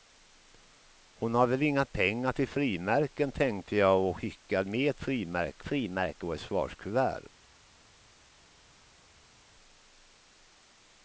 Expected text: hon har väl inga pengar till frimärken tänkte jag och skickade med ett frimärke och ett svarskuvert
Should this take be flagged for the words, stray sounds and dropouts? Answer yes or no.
yes